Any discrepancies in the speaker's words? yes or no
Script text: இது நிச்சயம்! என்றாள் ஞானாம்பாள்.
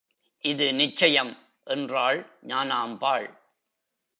no